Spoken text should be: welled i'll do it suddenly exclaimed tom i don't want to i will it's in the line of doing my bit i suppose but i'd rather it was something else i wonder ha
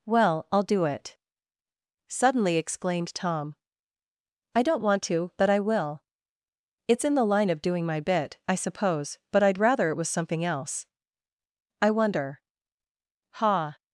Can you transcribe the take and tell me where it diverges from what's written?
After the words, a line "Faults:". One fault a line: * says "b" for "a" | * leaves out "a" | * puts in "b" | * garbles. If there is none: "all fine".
well i'll do it suddenly exclaimed tom i don't want to but i will it's in the line of doing my bit i suppose but i'd rather it was something else i wonder ha
Faults:
* says "well" for "welled"
* puts in "but"